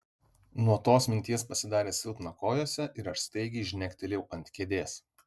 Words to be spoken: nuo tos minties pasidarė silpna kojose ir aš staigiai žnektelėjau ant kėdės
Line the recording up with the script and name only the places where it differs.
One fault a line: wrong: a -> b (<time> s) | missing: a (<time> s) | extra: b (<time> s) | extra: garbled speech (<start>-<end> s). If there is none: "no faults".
no faults